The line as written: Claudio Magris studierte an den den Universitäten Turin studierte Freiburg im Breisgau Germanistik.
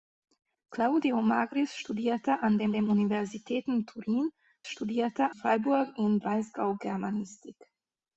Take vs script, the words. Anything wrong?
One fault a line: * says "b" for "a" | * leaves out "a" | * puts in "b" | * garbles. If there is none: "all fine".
all fine